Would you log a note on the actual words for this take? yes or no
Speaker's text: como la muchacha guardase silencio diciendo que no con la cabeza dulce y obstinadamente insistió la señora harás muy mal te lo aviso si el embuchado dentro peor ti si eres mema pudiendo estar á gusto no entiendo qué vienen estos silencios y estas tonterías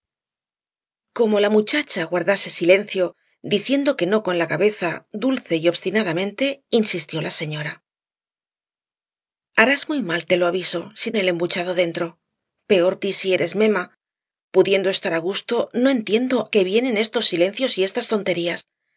no